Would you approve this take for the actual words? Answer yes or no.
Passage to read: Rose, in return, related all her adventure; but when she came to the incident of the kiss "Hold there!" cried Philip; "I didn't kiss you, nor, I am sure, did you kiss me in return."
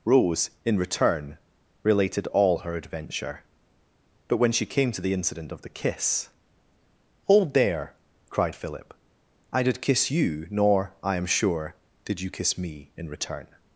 no